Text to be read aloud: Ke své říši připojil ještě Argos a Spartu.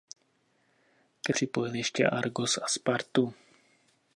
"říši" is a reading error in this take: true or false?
true